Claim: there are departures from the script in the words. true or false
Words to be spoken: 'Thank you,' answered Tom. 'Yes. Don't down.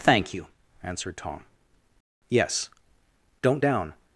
false